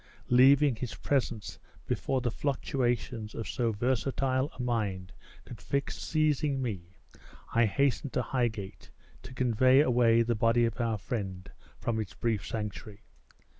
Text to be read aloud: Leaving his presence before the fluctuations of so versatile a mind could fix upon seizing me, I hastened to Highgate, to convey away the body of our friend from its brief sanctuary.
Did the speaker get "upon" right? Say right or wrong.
wrong